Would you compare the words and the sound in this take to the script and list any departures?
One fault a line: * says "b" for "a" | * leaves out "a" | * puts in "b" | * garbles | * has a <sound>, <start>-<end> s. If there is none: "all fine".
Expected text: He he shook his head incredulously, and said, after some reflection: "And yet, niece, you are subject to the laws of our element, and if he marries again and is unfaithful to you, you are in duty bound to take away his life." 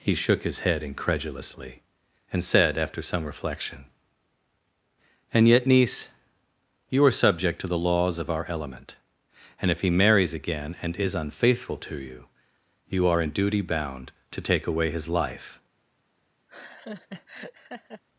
* leaves out "he"
* has a laugh, 16.5-18.0 s